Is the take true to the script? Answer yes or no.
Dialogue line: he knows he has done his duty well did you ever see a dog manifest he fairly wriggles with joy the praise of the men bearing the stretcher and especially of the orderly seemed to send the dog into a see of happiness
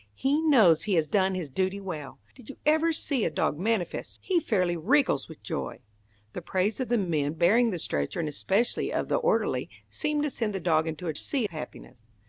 yes